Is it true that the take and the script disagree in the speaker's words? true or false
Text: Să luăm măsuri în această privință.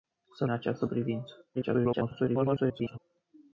true